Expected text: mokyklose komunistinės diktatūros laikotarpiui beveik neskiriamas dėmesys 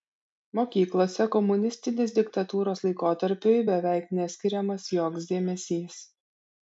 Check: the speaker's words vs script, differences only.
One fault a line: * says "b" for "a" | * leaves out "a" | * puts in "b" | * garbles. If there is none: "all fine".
* puts in "joks"